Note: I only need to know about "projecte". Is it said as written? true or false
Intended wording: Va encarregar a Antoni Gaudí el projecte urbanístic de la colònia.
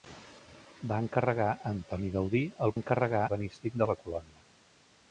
false